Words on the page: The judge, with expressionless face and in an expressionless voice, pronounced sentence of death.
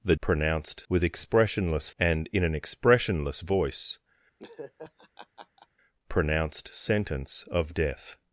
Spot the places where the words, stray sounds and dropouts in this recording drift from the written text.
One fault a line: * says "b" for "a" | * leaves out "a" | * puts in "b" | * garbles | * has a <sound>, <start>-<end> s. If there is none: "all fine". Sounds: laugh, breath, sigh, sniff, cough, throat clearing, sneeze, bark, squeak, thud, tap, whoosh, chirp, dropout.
* says "pronounced" for "judge"
* leaves out "face"
* has a laugh, 4.4-5.7 s